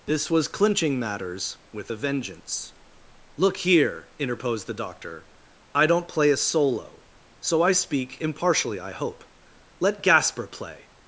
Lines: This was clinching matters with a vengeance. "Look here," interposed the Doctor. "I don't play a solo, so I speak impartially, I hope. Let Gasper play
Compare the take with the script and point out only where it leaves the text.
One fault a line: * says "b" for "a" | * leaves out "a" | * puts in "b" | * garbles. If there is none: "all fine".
all fine